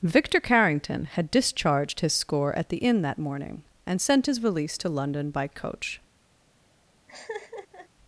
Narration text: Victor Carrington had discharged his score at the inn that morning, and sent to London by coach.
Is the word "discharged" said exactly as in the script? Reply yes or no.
yes